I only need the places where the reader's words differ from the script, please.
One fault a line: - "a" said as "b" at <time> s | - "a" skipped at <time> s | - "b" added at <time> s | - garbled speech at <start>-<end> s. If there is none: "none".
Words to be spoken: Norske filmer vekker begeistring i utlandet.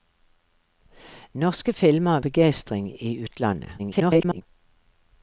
- "vekker" skipped at 2.2 s
- garbled speech at 3.8-4.4 s